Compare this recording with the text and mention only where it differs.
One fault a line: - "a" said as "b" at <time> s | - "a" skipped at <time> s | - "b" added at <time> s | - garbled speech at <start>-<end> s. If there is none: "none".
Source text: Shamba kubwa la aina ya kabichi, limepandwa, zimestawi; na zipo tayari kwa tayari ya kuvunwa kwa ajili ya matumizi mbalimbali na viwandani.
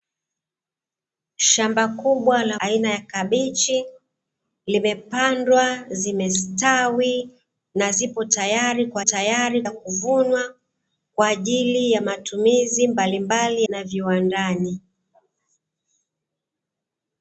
none